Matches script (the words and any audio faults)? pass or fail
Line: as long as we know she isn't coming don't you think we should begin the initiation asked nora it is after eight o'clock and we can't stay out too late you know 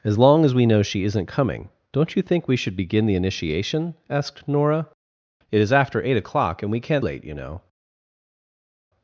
fail